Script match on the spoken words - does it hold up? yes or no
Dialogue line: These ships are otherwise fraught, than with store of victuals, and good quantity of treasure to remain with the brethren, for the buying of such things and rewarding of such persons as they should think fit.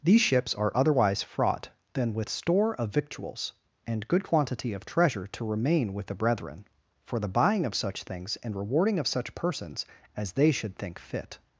yes